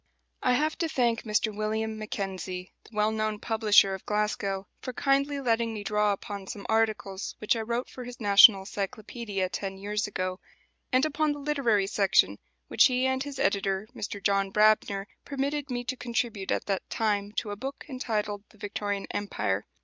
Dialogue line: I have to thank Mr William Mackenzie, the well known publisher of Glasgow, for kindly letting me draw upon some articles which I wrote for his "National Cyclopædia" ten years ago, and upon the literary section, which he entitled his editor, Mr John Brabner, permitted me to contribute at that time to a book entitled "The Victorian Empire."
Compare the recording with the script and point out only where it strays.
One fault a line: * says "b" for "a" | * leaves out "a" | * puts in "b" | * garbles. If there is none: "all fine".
* says "and" for "entitled"